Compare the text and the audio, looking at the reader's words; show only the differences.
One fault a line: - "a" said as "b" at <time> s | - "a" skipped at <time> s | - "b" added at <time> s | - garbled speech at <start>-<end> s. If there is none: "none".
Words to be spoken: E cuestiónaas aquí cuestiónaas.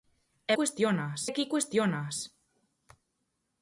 none